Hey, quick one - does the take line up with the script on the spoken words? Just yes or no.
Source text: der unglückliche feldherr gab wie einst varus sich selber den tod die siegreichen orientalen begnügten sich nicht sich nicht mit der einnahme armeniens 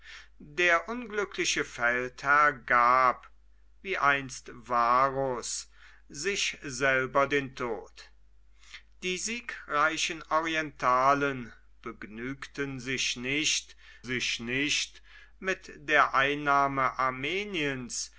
yes